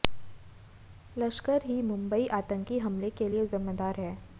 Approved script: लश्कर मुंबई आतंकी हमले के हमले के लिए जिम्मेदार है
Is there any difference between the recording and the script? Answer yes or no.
yes